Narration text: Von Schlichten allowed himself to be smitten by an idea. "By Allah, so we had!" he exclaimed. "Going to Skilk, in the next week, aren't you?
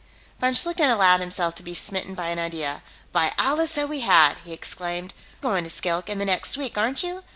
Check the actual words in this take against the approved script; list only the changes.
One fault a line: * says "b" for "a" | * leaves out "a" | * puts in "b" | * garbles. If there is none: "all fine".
all fine